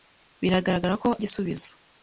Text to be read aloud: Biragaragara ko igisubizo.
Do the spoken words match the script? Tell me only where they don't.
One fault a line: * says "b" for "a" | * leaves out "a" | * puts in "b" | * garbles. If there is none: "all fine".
all fine